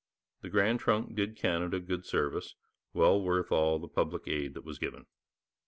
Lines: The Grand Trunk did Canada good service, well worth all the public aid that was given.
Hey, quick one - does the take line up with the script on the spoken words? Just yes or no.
yes